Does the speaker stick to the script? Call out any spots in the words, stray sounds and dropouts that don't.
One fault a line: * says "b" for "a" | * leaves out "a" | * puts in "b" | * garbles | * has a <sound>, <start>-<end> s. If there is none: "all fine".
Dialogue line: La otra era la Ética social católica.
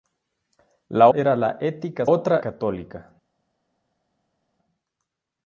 * leaves out "otra"
* says "otra" for "social"